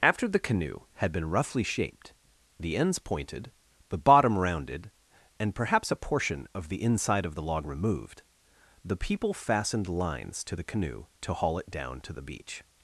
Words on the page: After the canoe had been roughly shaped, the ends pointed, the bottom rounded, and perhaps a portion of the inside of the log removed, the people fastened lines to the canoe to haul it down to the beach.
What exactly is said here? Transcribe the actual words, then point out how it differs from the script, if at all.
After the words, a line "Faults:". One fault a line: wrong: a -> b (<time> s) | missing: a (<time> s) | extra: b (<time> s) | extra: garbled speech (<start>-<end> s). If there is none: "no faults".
After the canoe had been roughly shaped, the ends pointed, the bottom rounded, and perhaps a portion of the inside of the log removed, the people fastened lines to the canoe to haul it down to the beach.
Faults:
no faults